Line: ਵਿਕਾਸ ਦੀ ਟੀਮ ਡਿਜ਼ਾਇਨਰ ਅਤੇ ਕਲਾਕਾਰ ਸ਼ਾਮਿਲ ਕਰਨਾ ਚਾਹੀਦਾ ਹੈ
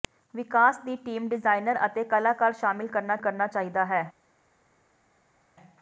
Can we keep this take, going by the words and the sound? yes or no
no